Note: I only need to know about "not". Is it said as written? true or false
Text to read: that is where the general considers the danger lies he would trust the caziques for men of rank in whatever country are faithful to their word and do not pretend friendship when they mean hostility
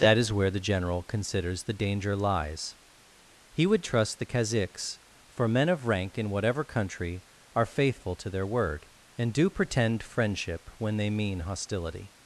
false